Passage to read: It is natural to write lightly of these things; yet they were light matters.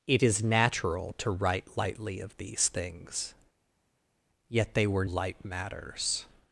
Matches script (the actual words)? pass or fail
pass